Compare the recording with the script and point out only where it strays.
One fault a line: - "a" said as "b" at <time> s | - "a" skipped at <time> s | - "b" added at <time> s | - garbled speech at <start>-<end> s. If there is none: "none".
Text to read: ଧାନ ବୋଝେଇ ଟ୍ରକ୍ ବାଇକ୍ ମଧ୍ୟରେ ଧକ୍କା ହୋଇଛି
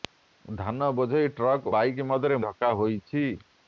none